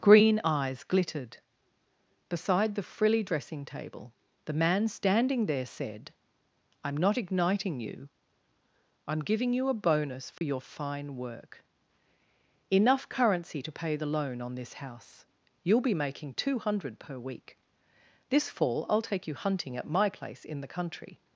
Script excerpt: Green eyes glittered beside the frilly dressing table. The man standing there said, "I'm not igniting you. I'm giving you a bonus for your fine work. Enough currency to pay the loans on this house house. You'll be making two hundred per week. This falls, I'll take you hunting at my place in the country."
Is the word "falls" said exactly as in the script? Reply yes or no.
no